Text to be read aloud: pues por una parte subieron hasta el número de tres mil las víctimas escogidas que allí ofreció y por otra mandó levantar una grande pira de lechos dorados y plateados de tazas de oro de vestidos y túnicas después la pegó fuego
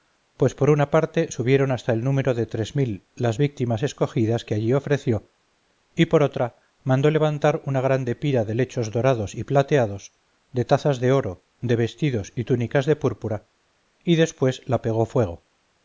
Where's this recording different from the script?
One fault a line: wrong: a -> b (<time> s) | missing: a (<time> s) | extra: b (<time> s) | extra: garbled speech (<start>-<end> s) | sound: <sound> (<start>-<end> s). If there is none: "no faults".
extra: de púrpura y (12.9 s)